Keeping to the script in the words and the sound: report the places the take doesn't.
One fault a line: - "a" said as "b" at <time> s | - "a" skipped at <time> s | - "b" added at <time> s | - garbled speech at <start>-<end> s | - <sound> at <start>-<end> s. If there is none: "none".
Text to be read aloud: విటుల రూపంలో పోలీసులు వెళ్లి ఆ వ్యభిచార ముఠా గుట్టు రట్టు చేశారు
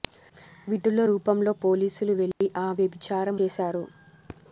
- dropout at 2.3-2.4 s
- "ముఠా గుట్టు రట్టు" skipped at 3.3 s